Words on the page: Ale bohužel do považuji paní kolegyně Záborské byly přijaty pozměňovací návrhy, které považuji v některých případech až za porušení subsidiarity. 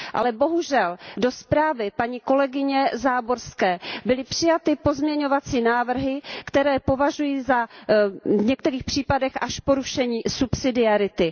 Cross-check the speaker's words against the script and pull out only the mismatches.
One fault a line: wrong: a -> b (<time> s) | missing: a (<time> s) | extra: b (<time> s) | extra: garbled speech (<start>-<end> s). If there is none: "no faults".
wrong: považuji -> zprávy (1.3 s)